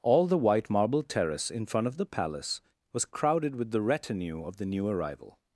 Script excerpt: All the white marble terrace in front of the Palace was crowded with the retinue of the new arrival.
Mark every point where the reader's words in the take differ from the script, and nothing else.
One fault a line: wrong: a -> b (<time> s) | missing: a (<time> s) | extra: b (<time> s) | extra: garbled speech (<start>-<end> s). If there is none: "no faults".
no faults